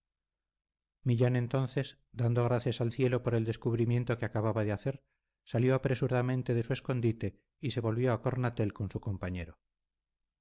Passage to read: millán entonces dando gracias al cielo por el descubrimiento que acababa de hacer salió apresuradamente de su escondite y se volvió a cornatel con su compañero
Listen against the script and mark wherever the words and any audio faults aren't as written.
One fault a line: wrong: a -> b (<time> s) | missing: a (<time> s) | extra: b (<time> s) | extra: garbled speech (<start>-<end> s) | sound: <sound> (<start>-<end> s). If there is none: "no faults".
no faults